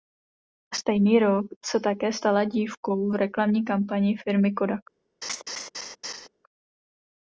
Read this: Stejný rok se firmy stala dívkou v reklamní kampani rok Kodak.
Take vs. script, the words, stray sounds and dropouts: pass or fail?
fail